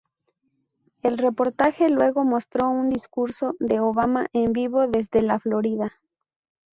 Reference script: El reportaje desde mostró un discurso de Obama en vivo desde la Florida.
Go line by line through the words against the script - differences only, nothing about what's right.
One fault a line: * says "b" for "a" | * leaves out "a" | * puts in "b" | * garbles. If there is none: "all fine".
* says "luego" for "desde"